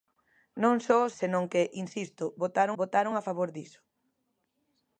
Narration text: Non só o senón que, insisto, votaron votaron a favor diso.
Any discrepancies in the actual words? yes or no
no